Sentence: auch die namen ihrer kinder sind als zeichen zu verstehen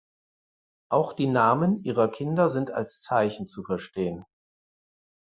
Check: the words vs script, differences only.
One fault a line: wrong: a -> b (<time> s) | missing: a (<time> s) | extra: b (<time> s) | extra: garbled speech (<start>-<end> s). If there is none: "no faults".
no faults